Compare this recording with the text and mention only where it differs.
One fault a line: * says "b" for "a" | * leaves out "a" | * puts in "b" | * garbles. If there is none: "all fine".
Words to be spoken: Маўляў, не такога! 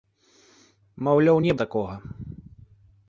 all fine